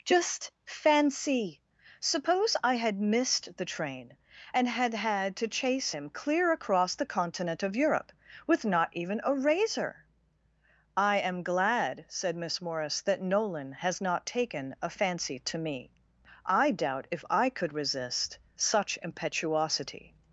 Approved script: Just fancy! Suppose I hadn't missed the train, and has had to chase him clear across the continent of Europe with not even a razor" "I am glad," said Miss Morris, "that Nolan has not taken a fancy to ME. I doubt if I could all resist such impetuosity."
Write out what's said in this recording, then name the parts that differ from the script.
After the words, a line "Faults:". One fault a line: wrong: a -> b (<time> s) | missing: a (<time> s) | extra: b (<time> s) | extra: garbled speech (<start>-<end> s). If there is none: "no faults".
Just fancy! Suppose I had missed the train, and had had to chase him clear across the continent of Europe with not even a razor" "I am glad," said Miss Morris, "that Nolan has not taken a fancy to ME. I doubt if I could resist such impetuosity."
Faults:
wrong: hadn't -> had (2.8 s)
wrong: has -> had (4.7 s)
missing: all (17.7 s)